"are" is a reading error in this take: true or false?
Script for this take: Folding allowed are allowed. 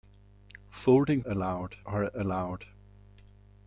false